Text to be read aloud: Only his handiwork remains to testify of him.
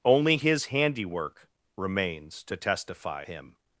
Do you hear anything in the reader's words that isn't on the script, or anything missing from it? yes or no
yes